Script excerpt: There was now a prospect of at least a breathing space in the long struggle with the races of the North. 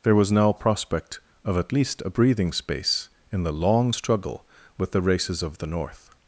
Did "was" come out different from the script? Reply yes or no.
no